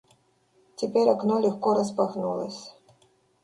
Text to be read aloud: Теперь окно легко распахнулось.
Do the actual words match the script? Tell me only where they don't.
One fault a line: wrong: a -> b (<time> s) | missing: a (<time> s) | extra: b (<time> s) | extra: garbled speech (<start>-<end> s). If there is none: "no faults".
no faults